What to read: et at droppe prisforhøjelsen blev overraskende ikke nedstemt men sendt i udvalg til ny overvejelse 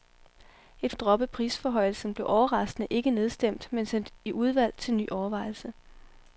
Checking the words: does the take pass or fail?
pass